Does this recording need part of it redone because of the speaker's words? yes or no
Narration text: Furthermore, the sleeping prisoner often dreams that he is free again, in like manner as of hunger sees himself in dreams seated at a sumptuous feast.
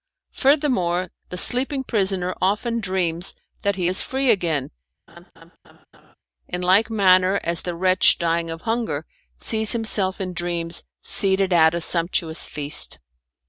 yes